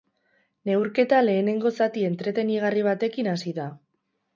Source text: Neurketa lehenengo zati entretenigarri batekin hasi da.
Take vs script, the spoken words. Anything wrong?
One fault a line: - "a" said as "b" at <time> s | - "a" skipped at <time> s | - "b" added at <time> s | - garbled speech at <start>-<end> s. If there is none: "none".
none